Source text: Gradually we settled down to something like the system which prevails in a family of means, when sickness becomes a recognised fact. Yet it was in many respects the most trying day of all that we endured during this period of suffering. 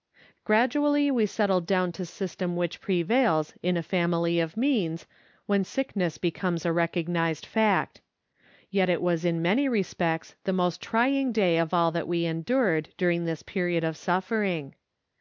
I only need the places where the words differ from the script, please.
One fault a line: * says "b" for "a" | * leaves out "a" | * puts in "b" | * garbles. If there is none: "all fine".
* leaves out "something like the"